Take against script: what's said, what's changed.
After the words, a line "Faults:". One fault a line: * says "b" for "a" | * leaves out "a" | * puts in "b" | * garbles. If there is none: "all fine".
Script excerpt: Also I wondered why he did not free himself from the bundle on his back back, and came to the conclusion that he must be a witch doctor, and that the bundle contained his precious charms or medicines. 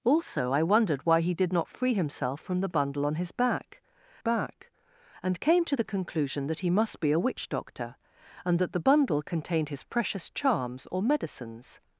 Also I wondered why he did not free himself from the bundle on his back back, and came to the conclusion that he must be a witch doctor, and that the bundle contained his precious charms or medicines.
Faults:
all fine